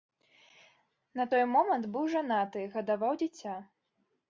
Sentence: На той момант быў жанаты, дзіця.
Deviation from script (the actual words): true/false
true